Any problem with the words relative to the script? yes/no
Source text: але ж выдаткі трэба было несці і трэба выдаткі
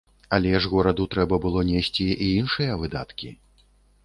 yes